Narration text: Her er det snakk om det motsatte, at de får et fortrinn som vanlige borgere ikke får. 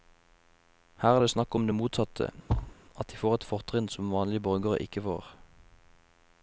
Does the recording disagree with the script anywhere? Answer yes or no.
no